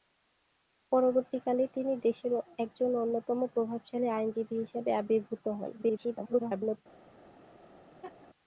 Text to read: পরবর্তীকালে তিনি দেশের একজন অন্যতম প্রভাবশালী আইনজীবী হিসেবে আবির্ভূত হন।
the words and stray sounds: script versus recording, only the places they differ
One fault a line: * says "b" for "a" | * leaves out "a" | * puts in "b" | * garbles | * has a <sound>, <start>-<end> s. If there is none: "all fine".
* garbles
* has a laugh, 8.0-8.3 s